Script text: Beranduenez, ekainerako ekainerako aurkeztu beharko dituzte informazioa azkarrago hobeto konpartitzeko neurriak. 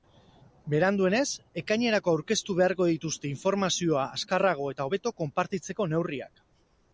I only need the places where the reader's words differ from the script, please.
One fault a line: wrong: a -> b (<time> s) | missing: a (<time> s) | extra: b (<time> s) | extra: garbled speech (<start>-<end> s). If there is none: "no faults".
missing: ekainerako (2.1 s)
extra: eta (4.8 s)